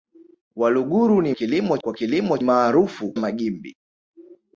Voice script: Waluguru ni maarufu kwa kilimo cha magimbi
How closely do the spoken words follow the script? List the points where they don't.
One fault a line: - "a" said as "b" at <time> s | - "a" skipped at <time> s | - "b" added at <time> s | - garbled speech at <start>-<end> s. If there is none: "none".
- "maarufu" said as "kilimo" at 1.3 s
- "cha" said as "maarufu" at 2.4 s